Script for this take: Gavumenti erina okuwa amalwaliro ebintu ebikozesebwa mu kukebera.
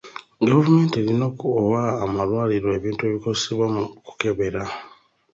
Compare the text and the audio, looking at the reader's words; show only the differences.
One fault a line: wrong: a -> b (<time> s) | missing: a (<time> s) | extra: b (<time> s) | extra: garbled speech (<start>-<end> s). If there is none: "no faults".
no faults